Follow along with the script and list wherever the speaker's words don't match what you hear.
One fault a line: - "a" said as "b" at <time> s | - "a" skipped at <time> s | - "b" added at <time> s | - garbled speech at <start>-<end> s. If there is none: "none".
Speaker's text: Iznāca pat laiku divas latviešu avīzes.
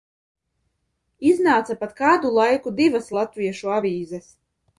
- "kādu" added at 2.0 s